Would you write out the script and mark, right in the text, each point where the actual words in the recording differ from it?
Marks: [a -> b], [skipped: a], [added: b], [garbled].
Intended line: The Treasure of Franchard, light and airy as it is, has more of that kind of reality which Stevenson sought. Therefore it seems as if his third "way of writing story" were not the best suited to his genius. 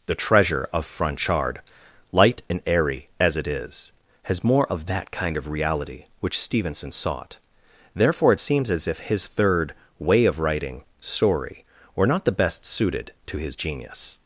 The Treasure of Franchard, light and airy as it is, has more of that kind of reality which Stevenson sought. Therefore it seems as if his third "way of writing story" were not the best suited to his genius.